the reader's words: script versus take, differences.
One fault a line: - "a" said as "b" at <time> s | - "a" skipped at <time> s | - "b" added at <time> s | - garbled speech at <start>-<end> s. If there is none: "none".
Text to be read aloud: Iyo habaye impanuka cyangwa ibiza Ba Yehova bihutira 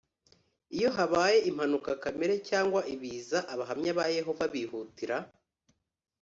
- "kamere" added at 2.0 s
- "Abahamya" added at 3.5 s